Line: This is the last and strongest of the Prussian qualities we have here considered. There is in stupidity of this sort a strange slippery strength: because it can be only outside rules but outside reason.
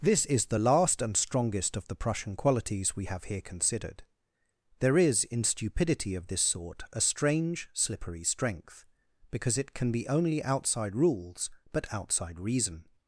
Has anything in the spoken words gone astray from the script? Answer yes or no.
no